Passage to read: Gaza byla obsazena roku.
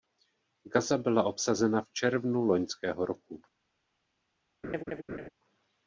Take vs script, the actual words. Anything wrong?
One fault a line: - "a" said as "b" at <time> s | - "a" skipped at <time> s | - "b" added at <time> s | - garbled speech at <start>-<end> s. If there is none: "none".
- "v červnu loňského" added at 1.8 s